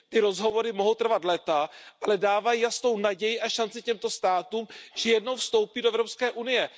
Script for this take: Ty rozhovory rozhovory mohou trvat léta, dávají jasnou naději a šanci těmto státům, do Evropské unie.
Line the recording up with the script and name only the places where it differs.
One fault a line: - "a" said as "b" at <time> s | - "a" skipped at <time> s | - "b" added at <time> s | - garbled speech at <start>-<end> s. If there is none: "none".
- "rozhovory" skipped at 0.7 s
- "ale" added at 2.0 s
- "že jednou vstoupí" added at 5.0 s